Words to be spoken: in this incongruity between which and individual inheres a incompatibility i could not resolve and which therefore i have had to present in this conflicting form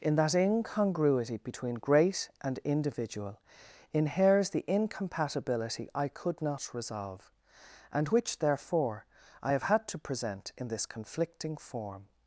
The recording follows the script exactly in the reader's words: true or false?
false